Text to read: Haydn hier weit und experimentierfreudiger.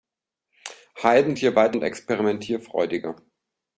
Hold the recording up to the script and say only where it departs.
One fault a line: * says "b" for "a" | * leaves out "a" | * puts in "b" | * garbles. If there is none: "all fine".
all fine